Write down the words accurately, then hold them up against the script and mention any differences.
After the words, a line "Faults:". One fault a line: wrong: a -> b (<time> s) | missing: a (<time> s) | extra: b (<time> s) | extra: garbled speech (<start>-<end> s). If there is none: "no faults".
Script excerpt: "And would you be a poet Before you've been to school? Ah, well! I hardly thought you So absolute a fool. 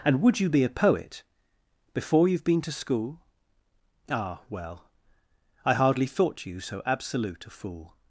"And would you be a poet Before you've been to school? Ah, well! I hardly thought you So absolute a fool.
Faults:
no faults